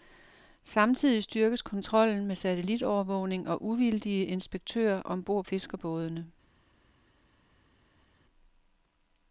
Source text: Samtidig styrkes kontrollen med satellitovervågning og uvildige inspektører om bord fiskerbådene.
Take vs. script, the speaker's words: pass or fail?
pass